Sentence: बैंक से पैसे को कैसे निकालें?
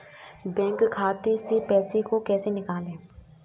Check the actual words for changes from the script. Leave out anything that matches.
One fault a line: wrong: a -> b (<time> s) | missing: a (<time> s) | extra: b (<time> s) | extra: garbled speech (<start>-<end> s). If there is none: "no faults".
extra: खाते (0.9 s)